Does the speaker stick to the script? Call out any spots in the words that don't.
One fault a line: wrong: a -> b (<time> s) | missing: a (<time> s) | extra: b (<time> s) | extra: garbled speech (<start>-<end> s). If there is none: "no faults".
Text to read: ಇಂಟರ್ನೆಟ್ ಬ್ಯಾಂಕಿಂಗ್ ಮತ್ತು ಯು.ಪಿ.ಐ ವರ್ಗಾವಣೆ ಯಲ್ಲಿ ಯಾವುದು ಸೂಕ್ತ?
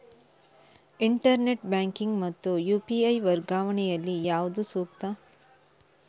no faults